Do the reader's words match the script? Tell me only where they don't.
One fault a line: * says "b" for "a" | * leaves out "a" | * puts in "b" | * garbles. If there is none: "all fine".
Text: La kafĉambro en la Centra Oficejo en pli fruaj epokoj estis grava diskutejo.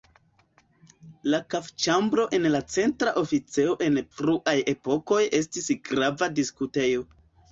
* leaves out "pli"